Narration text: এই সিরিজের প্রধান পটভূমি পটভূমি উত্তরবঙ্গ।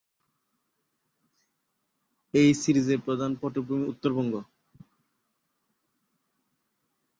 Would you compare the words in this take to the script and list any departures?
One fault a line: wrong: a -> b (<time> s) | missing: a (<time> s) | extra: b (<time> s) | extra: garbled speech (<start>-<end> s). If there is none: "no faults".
missing: পটভূমি (3.9 s)